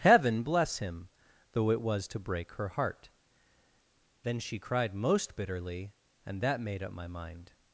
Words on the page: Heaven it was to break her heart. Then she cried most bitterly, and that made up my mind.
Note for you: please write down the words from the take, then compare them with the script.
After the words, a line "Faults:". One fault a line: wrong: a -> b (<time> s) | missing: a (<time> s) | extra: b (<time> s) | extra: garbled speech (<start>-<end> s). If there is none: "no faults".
Heaven bless him! though it was to break her heart. Then she cried most bitterly, and that made up my mind.
Faults:
extra: bless him though (0.4 s)